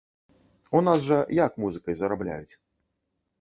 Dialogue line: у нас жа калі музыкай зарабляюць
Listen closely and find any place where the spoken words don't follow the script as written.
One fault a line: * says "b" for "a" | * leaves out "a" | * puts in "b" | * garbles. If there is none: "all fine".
* says "як" for "калі"